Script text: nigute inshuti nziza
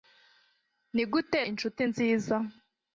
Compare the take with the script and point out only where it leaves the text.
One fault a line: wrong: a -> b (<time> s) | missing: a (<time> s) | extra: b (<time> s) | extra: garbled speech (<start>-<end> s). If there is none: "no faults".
no faults